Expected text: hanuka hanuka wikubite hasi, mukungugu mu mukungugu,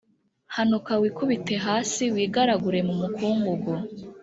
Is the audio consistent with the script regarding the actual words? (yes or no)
no